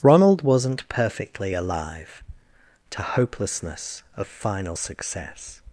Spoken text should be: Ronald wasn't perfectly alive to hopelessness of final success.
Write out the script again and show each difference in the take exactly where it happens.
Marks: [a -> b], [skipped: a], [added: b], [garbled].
Ronald wasn't perfectly alive to hopelessness of final success.